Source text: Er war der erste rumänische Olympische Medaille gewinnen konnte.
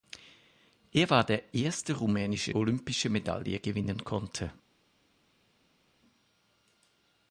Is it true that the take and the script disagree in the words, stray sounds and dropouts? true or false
false